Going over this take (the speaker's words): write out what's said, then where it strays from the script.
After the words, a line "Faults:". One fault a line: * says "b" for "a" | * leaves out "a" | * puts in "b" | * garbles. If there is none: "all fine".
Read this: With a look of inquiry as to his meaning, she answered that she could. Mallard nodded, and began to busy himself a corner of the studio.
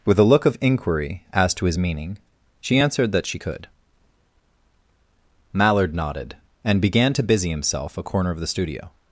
With a look of inquiry as to his meaning, she answered that she could. Mallard nodded, and began to busy himself a corner of the studio.
Faults:
all fine